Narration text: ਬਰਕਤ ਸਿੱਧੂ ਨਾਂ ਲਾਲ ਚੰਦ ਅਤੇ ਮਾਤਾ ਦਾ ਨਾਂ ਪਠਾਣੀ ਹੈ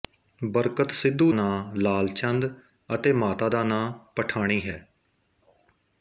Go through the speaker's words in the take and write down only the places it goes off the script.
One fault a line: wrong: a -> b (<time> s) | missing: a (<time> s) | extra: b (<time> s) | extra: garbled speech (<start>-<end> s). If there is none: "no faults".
no faults